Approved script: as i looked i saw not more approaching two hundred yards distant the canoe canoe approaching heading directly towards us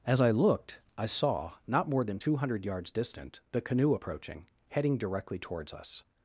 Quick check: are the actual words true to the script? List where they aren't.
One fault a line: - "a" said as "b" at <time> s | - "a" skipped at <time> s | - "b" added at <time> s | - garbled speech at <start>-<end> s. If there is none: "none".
- "approaching" said as "than" at 2.1 s
- "canoe" skipped at 4.0 s